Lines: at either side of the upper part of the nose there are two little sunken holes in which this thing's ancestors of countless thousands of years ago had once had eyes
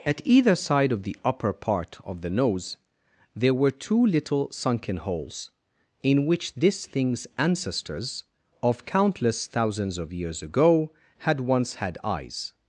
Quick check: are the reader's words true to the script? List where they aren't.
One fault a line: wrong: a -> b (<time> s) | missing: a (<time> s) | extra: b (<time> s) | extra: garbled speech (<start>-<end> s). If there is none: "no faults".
wrong: are -> were (3.5 s)